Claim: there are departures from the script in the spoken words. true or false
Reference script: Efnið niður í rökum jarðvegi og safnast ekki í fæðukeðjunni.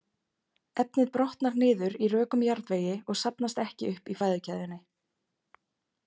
true